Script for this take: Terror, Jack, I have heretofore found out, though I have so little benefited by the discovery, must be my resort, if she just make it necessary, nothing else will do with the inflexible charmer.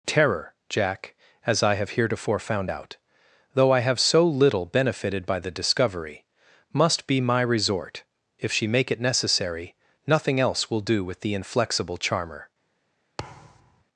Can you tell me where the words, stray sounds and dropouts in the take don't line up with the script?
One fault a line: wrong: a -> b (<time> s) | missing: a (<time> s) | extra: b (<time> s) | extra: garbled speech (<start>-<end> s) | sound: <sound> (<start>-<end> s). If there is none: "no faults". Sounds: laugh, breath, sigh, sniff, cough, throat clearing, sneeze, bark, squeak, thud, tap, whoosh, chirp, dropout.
extra: as (1.4 s)
missing: just (8.7 s)
sound: thud (13.2-13.8 s)